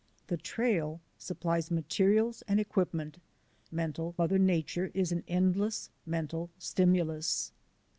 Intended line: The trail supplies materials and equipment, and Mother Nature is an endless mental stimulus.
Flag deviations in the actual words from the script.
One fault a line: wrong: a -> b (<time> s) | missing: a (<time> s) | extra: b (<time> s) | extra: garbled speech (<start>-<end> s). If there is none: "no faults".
wrong: and -> mental (3.7 s)